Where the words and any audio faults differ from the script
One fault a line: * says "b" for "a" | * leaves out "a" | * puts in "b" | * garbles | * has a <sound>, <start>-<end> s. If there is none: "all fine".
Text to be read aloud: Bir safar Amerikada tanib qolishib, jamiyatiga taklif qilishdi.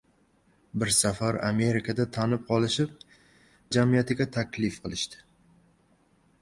all fine